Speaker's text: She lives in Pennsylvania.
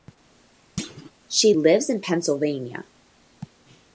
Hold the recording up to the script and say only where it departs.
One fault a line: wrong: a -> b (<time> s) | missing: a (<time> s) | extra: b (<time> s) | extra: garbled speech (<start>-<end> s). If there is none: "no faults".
no faults